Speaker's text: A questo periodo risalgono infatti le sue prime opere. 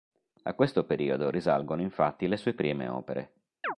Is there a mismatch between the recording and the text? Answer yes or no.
no